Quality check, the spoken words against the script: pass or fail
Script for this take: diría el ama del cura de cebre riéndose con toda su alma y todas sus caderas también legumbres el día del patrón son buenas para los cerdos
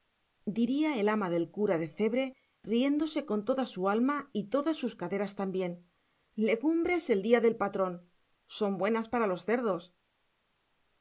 pass